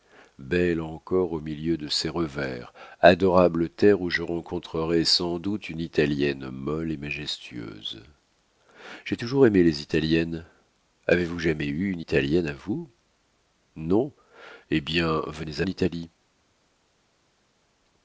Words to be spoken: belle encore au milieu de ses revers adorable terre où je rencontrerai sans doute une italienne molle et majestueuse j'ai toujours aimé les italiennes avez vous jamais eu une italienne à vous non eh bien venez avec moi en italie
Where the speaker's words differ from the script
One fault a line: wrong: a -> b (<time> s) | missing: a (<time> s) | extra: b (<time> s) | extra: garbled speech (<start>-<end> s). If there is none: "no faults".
missing: avec moi (15.6 s)